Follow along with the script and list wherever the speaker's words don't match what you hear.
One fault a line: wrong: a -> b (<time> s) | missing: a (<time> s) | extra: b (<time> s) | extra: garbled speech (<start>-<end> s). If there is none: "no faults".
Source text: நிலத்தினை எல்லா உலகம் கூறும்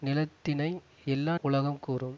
no faults